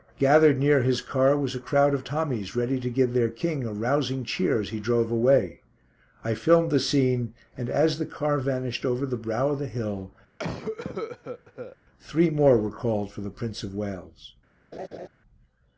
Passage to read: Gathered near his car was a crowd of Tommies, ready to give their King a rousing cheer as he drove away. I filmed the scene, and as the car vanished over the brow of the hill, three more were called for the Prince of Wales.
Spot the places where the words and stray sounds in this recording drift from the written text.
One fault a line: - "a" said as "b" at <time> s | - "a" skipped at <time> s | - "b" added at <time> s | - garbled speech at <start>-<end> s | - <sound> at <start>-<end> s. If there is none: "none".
- cough at 10.4-11.8 s
- laugh at 14.7-15.1 s